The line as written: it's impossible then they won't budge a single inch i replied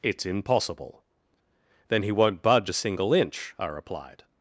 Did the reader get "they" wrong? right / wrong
wrong